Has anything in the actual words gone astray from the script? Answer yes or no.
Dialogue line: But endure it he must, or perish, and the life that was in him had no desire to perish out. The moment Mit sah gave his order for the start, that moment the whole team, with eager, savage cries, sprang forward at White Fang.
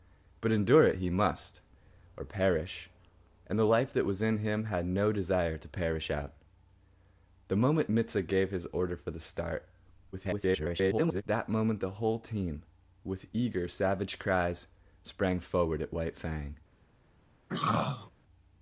yes